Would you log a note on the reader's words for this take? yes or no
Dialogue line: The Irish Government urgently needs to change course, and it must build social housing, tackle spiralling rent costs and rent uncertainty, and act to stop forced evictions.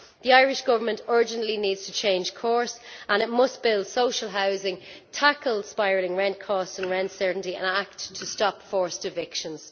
no